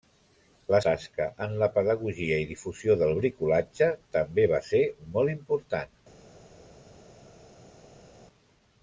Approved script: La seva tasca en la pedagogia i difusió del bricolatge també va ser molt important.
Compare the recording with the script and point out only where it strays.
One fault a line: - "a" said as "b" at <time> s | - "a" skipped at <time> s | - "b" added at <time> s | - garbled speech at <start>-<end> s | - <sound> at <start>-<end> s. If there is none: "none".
- "seva" skipped at 0.8 s